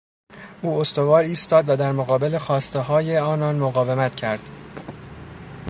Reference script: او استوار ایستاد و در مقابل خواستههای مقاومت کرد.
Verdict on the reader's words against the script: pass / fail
fail